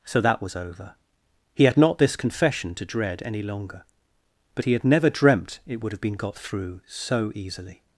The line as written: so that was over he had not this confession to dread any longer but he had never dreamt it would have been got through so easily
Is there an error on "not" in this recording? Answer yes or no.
no